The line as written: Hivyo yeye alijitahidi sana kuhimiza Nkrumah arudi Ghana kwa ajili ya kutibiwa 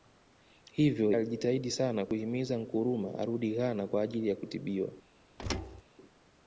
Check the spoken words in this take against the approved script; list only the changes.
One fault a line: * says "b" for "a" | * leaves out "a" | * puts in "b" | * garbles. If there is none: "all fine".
* leaves out "yeye"